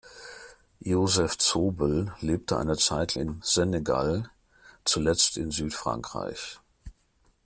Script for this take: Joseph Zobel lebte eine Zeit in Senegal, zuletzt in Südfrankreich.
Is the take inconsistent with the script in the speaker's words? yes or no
no